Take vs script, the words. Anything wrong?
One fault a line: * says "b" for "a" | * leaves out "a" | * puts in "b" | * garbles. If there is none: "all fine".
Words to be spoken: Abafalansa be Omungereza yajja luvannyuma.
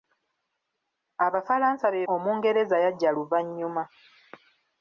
all fine